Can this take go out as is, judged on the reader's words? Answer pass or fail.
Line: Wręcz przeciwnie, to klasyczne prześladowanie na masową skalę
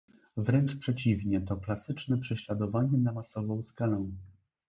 pass